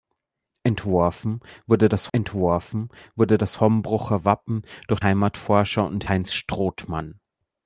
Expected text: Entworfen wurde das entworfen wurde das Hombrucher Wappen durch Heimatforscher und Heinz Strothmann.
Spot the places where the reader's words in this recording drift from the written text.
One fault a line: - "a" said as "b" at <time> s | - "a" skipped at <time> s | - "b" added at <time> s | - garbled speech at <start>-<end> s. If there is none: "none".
none